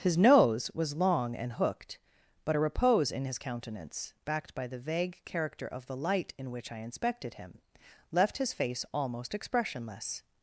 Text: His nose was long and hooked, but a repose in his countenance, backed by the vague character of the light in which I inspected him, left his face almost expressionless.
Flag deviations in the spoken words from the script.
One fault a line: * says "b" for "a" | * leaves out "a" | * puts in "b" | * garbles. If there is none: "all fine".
all fine